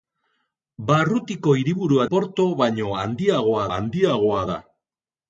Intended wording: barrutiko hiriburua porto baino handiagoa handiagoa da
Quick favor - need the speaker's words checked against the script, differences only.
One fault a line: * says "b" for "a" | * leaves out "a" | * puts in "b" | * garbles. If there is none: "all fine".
all fine